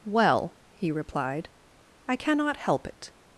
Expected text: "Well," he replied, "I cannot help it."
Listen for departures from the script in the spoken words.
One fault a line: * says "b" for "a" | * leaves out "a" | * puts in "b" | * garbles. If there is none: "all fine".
all fine